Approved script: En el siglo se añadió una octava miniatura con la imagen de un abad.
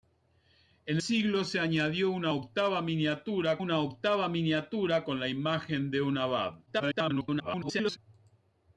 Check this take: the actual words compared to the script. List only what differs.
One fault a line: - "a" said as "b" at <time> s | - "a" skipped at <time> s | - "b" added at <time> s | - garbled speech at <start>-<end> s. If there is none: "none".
- "el" skipped at 1.0 s
- "una octava miniatura" added at 3.6 s
- garbled speech at 6.7-8.0 s